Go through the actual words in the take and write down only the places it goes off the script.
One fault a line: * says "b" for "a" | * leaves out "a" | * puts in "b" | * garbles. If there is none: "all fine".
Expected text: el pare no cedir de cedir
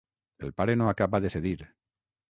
* says "acaba" for "cedir"